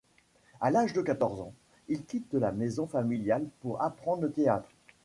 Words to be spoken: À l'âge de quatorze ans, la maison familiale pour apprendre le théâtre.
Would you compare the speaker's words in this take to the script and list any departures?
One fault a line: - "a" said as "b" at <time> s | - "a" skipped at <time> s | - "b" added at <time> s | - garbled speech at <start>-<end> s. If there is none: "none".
- "il quitte" added at 1.9 s